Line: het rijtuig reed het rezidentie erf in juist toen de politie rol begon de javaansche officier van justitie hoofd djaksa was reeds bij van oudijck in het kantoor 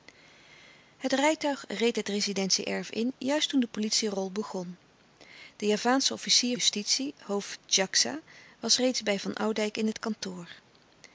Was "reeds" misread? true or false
false